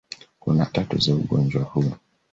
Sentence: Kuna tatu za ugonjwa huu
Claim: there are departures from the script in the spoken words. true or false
false